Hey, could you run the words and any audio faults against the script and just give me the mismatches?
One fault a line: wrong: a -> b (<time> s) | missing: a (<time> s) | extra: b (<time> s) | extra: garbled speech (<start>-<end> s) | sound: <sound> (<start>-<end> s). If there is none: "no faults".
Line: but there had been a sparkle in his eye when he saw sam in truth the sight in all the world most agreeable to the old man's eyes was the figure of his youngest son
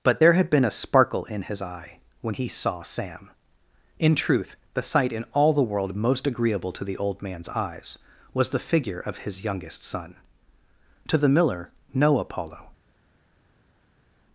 extra: to the miller no apollo (11.1 s)